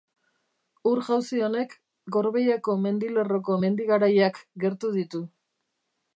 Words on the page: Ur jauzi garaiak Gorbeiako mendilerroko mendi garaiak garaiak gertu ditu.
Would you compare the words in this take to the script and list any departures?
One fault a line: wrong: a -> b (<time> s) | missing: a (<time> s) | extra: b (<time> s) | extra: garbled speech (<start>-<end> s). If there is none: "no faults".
wrong: garaiak -> honek (1.5 s)
missing: garaiak (4.4 s)